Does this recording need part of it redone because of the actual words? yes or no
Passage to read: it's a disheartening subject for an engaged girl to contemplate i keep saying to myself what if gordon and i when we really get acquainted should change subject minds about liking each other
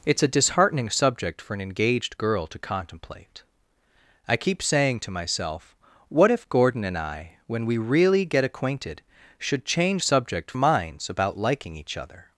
no